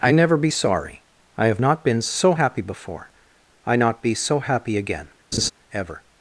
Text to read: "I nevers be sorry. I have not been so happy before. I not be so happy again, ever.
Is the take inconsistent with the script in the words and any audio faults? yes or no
yes